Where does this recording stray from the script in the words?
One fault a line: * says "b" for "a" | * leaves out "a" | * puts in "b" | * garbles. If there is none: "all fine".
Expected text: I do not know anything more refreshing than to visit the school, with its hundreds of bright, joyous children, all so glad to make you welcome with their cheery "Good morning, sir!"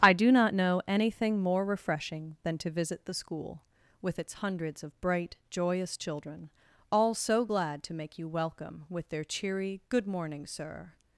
all fine